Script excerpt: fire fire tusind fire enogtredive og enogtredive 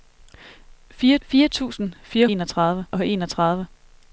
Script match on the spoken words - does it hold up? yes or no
yes